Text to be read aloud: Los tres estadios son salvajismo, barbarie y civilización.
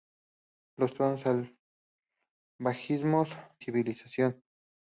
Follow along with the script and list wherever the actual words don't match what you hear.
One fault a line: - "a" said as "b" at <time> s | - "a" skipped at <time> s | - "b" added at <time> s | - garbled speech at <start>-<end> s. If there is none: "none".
- "tres estadios" skipped at 0.9 s
- "barbarie y" skipped at 3.2 s